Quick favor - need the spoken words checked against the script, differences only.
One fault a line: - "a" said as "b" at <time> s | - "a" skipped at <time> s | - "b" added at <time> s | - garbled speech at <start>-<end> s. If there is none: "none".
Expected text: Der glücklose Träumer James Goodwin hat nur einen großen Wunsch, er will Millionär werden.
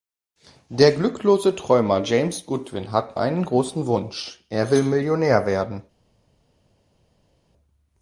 - "nur" skipped at 3.2 s